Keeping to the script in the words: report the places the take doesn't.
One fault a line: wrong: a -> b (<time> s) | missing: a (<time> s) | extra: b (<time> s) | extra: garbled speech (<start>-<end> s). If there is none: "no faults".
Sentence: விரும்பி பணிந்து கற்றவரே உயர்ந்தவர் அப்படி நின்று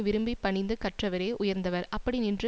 no faults